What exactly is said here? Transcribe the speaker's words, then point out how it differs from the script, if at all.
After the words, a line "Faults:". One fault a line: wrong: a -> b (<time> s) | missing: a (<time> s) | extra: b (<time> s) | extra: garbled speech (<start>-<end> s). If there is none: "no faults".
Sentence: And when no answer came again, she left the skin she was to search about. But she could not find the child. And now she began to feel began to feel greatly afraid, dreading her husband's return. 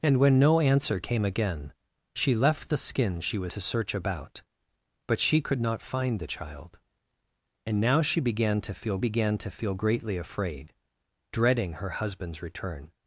And when no answer came again, she left the skin she was to search about. But she could not find the child. And now she began to feel began to feel greatly afraid, dreading her husband's return.
Faults:
no faults